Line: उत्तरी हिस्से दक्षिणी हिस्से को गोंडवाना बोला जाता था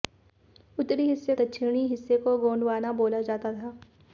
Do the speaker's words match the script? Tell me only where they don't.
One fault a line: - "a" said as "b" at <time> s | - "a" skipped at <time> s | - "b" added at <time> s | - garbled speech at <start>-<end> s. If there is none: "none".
none